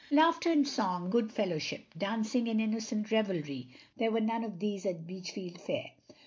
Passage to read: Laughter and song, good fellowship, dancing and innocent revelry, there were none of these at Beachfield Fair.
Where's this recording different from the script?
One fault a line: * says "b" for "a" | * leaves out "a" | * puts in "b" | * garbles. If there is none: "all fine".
all fine